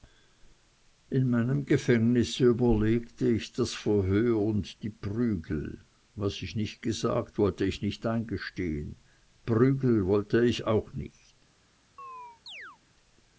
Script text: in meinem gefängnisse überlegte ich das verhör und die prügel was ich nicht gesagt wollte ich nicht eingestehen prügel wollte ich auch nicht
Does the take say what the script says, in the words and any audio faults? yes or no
no